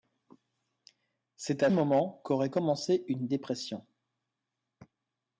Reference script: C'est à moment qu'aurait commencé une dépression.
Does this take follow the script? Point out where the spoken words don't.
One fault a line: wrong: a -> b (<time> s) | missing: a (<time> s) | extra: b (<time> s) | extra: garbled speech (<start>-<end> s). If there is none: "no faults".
no faults